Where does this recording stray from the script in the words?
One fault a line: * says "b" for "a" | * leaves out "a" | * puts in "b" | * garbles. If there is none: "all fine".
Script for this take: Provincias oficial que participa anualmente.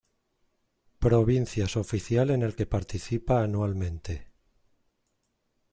* puts in "en el"